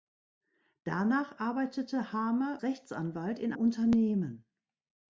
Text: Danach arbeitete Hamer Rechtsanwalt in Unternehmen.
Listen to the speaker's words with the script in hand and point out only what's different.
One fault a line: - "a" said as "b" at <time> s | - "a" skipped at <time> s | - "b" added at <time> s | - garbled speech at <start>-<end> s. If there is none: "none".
none